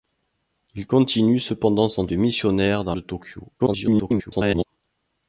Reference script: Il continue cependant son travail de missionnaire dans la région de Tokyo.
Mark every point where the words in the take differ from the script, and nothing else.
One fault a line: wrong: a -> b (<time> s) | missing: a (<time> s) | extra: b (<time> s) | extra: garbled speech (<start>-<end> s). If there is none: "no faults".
missing: travail (2.1 s)
missing: la région (2.9 s)
extra: garbled speech (3.6-4.6 s)